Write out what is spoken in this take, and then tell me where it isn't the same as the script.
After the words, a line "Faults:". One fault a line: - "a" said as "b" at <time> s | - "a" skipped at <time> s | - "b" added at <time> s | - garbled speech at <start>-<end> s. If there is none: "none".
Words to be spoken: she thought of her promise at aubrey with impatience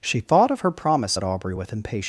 she thought of her promise at aubrey with impatience
Faults:
none